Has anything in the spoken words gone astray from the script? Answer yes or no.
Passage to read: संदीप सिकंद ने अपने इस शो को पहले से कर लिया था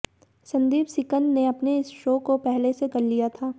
no